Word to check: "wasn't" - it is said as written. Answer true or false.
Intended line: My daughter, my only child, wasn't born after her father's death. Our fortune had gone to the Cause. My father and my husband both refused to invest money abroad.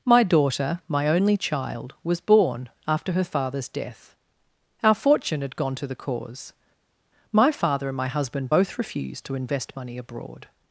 false